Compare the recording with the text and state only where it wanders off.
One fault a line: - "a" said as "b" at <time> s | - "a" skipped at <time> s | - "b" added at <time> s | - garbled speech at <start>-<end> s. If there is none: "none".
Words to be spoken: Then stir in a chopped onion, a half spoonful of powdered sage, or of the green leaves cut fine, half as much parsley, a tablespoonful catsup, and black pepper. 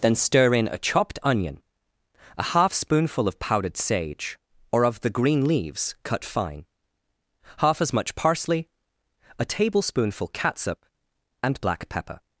none